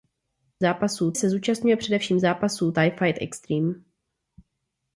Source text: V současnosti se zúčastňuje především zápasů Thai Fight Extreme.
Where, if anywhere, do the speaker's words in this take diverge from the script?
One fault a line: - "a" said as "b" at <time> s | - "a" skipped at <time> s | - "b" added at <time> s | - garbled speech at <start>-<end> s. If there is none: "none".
- "současnosti" said as "zápasů" at 0.6 s